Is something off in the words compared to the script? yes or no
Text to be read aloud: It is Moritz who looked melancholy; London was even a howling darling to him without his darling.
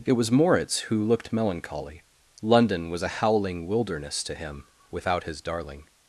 yes